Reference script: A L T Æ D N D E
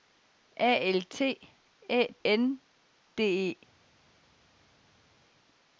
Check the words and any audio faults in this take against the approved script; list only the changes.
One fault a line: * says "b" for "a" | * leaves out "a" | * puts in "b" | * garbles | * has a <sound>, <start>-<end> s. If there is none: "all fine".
all fine